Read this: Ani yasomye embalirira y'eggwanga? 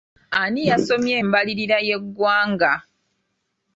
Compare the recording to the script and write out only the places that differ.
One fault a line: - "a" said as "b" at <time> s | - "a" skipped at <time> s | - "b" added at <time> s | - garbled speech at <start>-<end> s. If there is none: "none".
none